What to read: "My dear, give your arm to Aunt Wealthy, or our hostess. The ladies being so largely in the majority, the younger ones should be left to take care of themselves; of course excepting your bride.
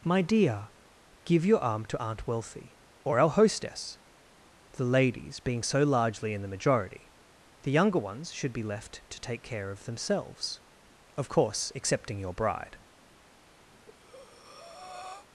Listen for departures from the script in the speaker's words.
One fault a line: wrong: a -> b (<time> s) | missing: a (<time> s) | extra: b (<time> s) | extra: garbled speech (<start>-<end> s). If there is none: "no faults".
no faults